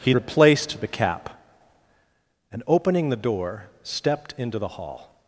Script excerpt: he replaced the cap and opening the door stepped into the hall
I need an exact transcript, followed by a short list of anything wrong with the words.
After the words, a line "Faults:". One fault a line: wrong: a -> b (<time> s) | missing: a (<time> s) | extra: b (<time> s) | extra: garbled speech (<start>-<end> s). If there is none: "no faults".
he replaced the cap and opening the door stepped into the hall
Faults:
no faults